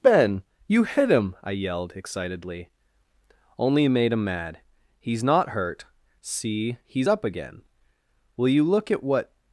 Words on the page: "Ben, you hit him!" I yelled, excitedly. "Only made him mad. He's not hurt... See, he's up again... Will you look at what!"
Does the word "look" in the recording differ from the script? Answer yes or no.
no